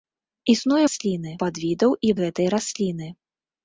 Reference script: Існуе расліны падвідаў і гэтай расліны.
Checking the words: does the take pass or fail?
pass